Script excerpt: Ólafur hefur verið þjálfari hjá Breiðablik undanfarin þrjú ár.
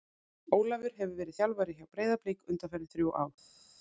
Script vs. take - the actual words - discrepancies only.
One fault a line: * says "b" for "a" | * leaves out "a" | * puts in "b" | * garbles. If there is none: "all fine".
all fine